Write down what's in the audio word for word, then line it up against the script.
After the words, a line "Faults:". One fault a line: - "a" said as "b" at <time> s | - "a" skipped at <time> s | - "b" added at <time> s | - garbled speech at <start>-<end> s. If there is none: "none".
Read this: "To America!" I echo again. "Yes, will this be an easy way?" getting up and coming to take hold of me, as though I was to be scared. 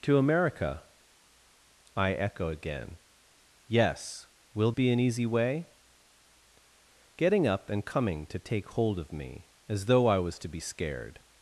"To America!" I echo again. "Yes, will be an easy way?" getting up and coming to take hold of me, as though I was to be scared.
Faults:
- "this" skipped at 4.7 s